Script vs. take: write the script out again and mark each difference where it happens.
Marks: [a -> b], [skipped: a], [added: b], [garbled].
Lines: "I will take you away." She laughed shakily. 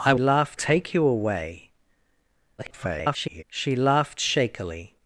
"I [will -> laughed] take you away." [garbled] She laughed shakily.